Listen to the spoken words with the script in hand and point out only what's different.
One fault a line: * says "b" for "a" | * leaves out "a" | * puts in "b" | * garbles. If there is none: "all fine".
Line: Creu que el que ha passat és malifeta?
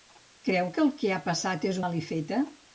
all fine